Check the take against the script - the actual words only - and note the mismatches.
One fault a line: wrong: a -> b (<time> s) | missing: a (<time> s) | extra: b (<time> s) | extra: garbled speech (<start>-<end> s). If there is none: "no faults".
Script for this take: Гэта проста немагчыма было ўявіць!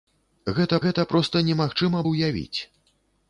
extra: гэта (0.9 s)
missing: было (2.0 s)